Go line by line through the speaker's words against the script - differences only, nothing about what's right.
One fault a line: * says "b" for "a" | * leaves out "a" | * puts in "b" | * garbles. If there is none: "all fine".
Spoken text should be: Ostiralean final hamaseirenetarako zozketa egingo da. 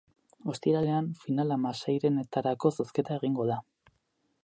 all fine